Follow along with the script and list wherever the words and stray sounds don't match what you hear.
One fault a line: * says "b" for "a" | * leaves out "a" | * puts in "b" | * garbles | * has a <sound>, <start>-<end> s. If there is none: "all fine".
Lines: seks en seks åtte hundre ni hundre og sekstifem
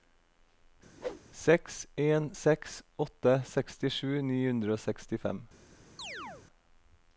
* has a whoosh, 1.0-1.2 s
* says "sekstisju" for "hundre"
* has a chirp, 6.0-6.5 s